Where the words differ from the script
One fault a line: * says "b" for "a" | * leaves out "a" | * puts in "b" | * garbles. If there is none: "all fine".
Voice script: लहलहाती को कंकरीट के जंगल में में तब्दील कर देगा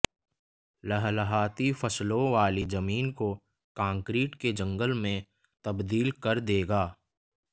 * puts in "फसलों वाली जमीन"
* leaves out "में"